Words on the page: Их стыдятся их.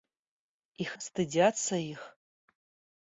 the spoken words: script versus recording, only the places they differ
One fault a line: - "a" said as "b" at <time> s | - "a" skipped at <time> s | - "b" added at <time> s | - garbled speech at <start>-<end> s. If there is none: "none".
none